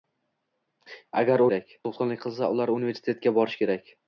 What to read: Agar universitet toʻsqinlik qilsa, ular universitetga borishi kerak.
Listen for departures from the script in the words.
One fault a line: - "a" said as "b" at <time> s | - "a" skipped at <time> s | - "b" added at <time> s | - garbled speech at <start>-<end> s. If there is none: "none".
- "universitet" said as "kerak" at 1.5 s